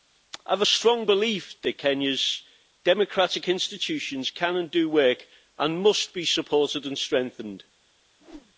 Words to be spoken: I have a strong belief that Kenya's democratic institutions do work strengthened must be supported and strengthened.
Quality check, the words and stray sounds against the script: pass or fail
fail